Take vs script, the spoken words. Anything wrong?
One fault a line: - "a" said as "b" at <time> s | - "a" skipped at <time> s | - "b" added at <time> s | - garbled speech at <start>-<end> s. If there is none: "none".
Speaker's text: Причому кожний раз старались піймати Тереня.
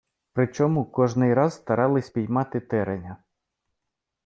none